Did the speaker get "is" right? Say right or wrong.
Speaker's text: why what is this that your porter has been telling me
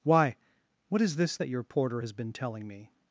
right